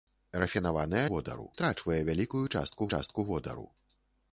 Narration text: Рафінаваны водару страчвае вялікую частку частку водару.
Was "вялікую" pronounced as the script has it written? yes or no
yes